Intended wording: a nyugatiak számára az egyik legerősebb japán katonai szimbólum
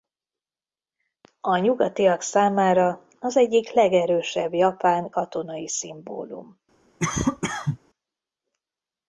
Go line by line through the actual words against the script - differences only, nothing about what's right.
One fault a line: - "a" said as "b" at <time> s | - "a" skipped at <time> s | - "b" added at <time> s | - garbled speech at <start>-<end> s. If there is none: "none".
none